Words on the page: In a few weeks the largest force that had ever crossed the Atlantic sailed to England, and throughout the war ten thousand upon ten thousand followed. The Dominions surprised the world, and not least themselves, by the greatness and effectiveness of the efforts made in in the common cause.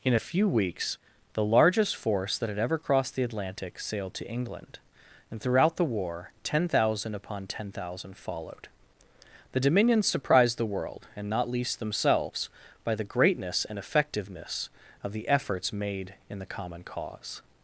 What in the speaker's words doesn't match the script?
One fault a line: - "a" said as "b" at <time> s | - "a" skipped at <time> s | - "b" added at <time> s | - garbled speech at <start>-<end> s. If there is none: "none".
- "in" skipped at 16.4 s